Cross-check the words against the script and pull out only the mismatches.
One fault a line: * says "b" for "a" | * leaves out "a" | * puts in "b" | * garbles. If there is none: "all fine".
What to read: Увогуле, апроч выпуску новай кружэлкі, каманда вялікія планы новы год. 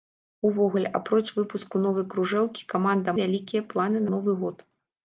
all fine